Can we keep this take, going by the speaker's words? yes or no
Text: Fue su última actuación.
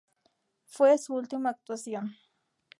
yes